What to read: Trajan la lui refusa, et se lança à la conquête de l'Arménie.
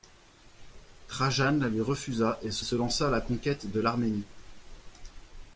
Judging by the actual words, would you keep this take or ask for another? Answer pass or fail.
fail